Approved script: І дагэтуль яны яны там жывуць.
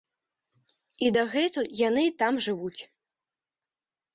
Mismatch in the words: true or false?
true